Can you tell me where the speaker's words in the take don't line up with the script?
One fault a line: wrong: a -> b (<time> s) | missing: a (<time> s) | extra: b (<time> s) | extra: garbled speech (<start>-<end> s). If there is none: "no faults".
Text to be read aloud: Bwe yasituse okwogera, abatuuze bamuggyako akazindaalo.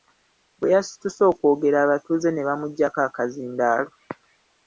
extra: ne (2.3 s)